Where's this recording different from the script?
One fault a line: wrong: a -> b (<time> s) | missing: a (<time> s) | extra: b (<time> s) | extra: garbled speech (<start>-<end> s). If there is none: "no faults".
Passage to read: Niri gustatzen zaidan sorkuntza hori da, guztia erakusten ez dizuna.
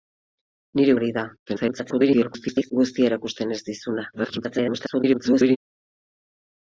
missing: gustatzen zaidan sorkuntza (0.9 s)
extra: garbled speech (1.5-2.7 s)
extra: garbled speech (4.1-5.6 s)